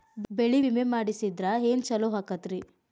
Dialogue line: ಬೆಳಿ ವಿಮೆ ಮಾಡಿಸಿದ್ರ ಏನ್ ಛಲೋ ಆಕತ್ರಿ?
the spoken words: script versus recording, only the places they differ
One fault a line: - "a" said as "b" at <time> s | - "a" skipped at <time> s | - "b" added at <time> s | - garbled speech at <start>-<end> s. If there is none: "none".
none